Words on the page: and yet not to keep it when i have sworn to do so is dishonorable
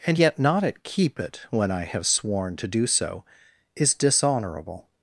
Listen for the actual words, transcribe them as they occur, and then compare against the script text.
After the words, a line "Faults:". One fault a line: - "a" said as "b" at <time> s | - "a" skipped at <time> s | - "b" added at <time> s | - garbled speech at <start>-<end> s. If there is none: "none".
and yet not at keep it when i have sworn to do so is dishonorable
Faults:
- "to" said as "at" at 0.6 s